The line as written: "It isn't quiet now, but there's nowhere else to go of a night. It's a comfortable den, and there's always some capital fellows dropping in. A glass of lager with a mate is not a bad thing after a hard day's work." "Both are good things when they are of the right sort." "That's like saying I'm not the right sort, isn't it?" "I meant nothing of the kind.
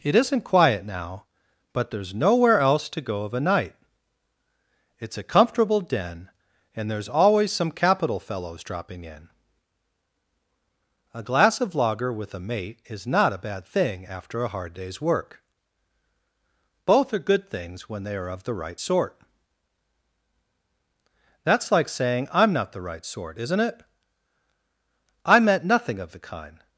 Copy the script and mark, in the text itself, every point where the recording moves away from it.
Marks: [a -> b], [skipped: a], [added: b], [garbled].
"It isn't quiet now, but there's nowhere else to go of a night. It's a comfortable den, and there's always some capital fellows dropping in. A glass of lager with a mate is not a bad thing after a hard day's work." "Both are good things when they are of the right sort." "That's like saying I'm not the right sort, isn't it?" "I meant nothing of the kind.